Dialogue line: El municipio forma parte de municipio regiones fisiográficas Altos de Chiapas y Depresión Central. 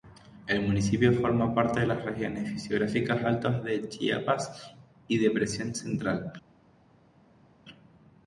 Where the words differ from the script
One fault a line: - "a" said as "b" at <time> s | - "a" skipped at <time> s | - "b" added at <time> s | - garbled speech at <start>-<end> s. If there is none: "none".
- "municipio" said as "las" at 1.9 s